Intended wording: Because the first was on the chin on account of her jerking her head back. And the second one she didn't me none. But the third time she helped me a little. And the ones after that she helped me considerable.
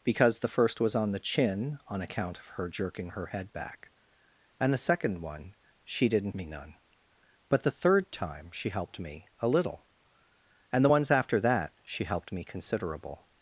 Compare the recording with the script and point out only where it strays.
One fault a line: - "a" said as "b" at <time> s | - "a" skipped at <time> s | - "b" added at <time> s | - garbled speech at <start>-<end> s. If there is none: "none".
none